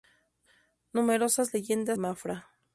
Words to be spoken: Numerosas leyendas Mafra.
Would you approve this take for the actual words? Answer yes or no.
yes